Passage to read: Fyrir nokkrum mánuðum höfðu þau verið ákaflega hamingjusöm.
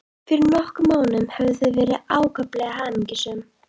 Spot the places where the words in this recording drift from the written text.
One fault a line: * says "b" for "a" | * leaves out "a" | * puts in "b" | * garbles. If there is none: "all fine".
all fine